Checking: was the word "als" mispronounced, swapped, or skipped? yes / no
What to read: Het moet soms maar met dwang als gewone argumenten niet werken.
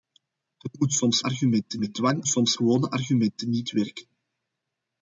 yes